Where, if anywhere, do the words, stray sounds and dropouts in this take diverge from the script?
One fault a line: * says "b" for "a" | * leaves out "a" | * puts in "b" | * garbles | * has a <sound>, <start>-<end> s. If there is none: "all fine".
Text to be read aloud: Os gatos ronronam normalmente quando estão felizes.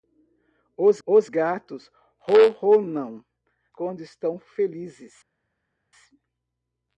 * puts in "os"
* leaves out "normalmente"